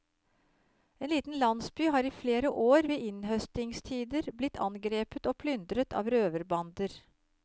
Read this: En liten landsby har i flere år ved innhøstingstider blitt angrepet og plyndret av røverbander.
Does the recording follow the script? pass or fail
pass